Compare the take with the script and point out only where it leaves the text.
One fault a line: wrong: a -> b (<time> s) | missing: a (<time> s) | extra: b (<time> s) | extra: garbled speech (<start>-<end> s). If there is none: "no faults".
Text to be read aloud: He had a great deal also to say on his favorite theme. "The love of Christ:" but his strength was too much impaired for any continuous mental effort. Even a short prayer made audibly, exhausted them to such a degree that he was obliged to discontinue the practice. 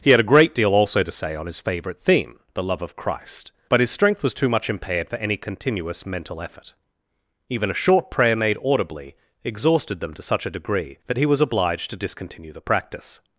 no faults